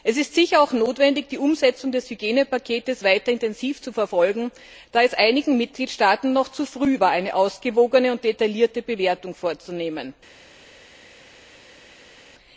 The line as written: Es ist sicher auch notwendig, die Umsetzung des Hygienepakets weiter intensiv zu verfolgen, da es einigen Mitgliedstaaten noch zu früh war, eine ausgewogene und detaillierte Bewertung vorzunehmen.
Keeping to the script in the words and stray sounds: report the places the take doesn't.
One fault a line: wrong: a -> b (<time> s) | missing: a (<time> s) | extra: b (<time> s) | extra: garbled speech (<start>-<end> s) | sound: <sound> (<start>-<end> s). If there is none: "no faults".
no faults